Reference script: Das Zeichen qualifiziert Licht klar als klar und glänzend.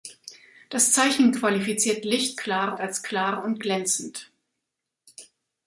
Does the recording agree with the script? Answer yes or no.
yes